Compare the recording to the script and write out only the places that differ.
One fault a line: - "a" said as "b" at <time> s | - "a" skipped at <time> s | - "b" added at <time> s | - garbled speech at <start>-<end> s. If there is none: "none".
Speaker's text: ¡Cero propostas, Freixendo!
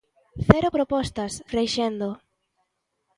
none